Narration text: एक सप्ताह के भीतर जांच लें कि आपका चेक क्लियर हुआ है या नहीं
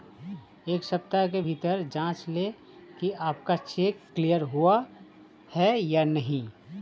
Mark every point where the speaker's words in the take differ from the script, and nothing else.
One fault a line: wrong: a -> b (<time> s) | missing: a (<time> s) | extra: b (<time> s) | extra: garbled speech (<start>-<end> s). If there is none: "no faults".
no faults